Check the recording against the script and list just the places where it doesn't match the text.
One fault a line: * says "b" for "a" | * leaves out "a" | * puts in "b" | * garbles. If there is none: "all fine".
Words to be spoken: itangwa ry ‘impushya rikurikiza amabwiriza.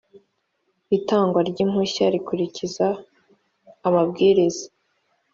all fine